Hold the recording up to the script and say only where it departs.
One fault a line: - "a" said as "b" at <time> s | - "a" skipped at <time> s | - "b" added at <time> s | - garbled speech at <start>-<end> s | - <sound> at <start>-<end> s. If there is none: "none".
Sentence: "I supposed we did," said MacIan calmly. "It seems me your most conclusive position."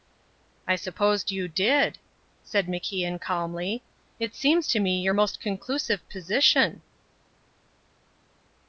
- "we" said as "you" at 1.3 s
- "to" added at 4.7 s